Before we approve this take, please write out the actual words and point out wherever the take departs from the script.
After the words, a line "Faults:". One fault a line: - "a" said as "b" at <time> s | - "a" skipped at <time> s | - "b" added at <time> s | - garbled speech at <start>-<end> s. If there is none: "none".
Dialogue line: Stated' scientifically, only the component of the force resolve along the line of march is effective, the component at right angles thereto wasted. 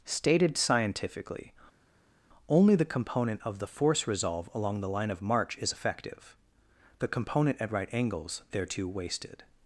Stated' scientifically, only the component of the force resolve along the line of march is effective, the component at right angles thereto wasted.
Faults:
none